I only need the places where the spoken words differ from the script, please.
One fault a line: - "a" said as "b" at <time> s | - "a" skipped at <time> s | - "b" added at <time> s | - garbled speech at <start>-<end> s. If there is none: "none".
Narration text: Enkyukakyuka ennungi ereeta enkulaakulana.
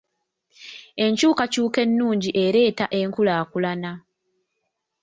none